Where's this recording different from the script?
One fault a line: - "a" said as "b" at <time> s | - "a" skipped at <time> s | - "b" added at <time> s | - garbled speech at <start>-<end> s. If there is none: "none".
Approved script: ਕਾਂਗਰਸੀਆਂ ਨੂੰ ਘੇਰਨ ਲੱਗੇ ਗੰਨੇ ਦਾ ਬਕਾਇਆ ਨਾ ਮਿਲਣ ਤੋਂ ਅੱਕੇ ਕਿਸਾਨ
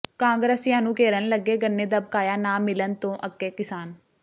none